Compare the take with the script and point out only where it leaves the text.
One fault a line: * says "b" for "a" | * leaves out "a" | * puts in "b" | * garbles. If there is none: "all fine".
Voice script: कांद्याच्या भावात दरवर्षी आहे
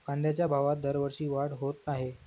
* puts in "वाढ होत"